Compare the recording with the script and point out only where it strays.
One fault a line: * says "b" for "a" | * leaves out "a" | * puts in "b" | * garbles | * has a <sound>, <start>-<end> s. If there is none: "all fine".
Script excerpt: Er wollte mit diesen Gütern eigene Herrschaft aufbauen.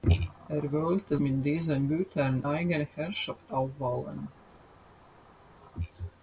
all fine